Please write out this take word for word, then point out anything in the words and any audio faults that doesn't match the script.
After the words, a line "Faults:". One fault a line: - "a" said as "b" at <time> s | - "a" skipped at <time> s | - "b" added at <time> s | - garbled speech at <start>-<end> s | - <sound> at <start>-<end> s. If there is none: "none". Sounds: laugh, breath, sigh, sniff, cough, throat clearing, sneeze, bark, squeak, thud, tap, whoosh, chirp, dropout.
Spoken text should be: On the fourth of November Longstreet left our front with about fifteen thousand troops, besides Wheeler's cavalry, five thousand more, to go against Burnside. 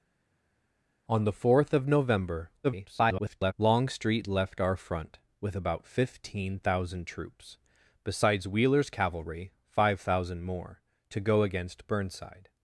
On the fourth of November [garbled] Longstreet left our front with about fifteen thousand troops, besides Wheeler's cavalry, five thousand more, to go against Burnside.
Faults:
- garbled speech at 2.6-3.5 s